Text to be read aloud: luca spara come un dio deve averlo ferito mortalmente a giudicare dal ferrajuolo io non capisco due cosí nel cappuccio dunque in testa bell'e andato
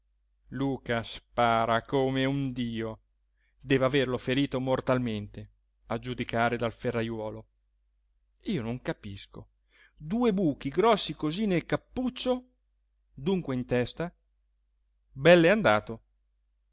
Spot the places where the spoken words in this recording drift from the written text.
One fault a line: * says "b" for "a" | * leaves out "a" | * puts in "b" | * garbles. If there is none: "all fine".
* puts in "buchi grossi"